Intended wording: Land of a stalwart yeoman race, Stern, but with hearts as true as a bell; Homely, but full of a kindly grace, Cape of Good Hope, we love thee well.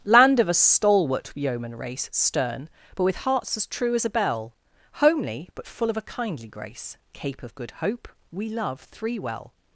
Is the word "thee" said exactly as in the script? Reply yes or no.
no